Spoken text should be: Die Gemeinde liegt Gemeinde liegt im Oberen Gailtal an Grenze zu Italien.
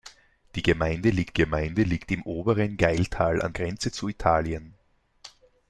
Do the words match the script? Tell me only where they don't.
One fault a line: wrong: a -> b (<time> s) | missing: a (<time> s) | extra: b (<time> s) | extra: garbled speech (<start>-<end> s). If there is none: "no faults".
no faults